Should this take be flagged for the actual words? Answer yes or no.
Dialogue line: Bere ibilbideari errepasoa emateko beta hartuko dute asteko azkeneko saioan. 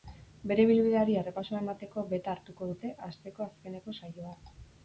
no